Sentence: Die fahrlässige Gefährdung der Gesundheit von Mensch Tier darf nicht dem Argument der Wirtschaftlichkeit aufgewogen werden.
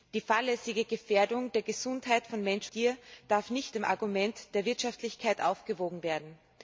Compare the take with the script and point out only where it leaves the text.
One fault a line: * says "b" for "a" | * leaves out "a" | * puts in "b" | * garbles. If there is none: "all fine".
all fine